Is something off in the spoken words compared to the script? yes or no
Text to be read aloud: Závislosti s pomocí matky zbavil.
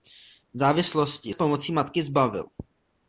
no